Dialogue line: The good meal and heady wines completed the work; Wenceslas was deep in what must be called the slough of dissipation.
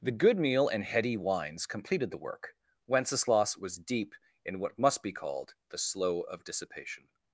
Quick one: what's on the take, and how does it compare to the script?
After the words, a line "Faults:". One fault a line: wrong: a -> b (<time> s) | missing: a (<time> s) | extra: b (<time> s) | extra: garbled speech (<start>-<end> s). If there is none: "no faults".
The good meal and heady wines completed the work; Wenceslas was deep in what must be called the slough of dissipation.
Faults:
no faults